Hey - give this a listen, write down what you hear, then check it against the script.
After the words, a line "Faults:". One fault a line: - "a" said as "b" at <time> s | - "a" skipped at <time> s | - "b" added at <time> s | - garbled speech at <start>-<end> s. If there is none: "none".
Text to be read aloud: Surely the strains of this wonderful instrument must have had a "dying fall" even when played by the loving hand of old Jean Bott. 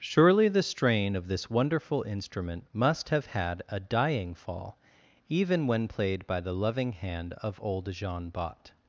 Surely the strain of this wonderful instrument must have had a "dying fall" even when played by the loving hand of old Jean Bott.
Faults:
- "strains" said as "strain" at 0.6 s